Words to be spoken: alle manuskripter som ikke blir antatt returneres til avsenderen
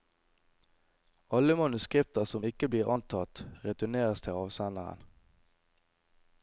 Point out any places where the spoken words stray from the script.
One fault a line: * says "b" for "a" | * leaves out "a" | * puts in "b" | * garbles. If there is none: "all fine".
all fine